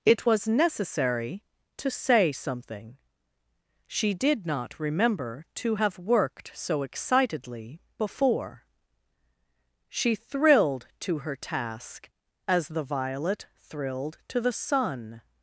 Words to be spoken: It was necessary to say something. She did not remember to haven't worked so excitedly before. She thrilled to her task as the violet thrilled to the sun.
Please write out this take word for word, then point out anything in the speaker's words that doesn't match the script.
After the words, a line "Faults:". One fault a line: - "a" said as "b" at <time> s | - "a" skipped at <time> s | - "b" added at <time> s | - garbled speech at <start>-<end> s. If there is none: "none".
It was necessary to say something. She did not remember to have worked so excitedly before. She thrilled to her task as the violet thrilled to the sun.
Faults:
- "haven't" said as "have" at 5.7 s